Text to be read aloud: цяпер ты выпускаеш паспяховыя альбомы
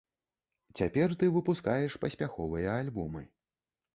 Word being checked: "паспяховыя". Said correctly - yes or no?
yes